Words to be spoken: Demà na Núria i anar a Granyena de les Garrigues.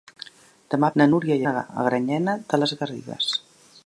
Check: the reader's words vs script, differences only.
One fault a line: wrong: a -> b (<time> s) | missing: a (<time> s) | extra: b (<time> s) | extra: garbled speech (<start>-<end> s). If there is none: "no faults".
no faults